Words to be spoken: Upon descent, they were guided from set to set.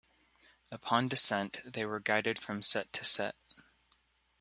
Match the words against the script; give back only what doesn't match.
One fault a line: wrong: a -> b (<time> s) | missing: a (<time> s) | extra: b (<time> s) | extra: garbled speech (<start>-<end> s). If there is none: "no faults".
no faults